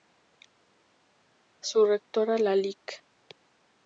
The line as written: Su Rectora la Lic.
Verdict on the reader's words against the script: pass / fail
pass